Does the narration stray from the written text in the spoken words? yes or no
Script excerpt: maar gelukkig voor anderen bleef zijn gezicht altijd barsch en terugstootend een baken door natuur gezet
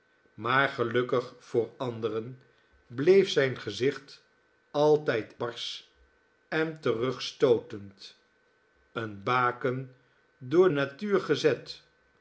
no